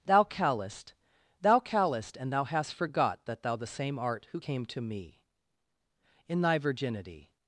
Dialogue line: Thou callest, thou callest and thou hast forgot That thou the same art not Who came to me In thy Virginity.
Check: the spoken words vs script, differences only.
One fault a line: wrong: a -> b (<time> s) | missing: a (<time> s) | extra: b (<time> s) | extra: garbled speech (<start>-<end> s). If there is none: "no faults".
missing: not (4.3 s)